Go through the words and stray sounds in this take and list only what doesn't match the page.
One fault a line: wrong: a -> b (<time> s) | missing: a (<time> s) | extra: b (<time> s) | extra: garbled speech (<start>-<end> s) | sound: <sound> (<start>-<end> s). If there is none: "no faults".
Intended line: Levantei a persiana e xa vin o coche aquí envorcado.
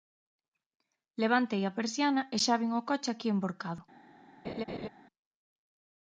sound: laugh (4.4-4.9 s)